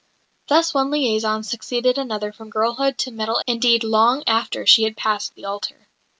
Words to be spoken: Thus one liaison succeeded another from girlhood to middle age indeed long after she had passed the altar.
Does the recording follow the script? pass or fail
fail